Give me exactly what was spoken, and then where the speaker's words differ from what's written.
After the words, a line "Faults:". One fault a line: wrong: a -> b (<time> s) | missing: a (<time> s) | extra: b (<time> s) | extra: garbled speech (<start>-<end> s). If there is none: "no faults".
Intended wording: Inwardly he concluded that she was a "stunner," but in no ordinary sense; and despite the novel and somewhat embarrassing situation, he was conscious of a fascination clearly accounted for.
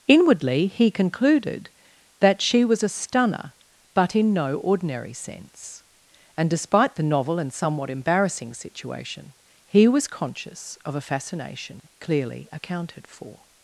Inwardly he concluded that she was a "stunner," but in no ordinary sense; and despite the novel and somewhat embarrassing situation, he was conscious of a fascination clearly accounted for.
Faults:
no faults